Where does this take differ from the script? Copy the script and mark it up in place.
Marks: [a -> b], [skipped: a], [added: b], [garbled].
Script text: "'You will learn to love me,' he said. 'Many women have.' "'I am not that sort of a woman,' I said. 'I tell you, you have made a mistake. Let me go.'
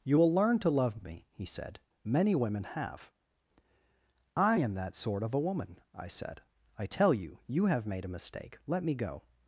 "'You will learn to love me,' he said. 'Many women have.' "'I am [skipped: not] that sort of a woman,' I said. 'I tell you, you have made a mistake. Let me go.'